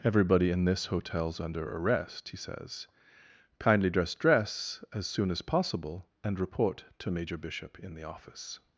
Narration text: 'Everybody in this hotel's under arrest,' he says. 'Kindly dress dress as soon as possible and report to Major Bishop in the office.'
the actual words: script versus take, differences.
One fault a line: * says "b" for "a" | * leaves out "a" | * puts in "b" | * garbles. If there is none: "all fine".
all fine